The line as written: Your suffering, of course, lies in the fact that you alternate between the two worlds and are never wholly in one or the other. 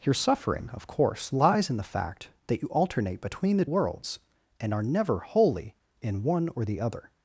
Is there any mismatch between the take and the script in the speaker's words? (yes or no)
yes